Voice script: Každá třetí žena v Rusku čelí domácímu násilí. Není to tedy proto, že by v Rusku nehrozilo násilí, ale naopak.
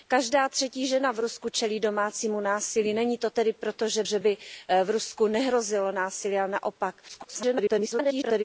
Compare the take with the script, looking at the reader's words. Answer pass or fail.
fail